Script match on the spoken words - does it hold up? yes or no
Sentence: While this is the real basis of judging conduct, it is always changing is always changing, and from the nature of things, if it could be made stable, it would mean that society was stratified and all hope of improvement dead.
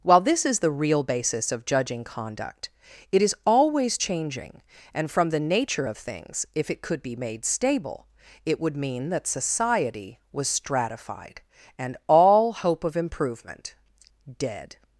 no